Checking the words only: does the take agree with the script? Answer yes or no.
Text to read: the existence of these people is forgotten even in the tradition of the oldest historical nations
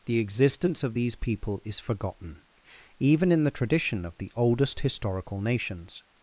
yes